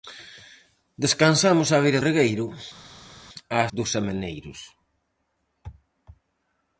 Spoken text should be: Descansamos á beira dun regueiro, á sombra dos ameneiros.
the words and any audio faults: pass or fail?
fail